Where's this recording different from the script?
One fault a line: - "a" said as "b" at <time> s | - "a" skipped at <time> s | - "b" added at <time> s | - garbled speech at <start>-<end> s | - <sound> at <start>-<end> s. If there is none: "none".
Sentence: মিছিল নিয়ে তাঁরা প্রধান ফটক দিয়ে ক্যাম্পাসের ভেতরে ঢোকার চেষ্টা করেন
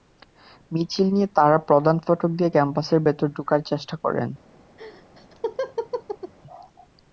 - laugh at 4.8-6.3 s